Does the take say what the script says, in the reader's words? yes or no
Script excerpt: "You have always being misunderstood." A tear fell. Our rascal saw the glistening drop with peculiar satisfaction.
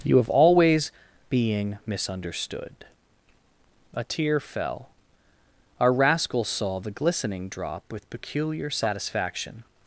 yes